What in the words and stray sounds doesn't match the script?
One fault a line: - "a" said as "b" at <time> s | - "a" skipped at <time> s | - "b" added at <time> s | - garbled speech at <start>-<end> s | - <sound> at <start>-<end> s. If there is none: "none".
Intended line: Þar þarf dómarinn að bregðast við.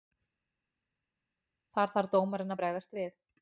none